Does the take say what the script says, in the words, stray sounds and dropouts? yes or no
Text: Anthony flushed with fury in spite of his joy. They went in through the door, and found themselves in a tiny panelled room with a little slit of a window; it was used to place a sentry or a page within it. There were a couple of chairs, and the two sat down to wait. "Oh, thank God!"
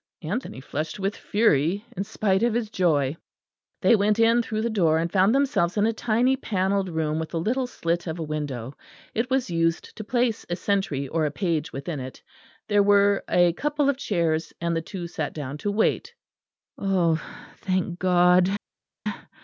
yes